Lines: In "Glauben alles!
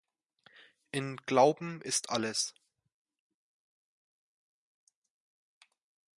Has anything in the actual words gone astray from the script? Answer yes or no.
yes